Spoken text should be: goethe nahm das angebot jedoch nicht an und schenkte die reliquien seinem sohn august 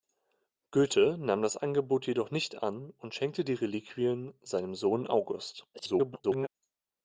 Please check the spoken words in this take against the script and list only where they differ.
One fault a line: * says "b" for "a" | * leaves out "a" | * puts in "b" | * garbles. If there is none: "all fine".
* garbles